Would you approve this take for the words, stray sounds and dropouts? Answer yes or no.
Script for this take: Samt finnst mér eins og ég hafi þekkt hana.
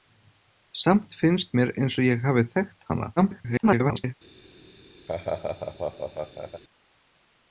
no